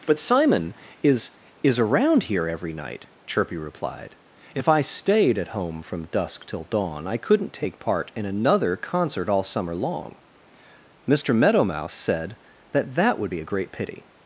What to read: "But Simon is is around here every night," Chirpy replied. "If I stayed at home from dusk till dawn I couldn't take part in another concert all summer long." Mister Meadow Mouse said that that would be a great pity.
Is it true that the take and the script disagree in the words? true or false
false